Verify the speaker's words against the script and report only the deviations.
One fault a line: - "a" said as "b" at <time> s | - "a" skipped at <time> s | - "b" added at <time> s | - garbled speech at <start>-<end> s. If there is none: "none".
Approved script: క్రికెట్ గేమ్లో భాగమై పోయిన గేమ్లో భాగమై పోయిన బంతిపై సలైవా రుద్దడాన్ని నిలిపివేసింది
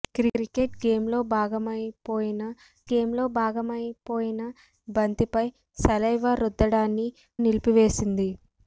none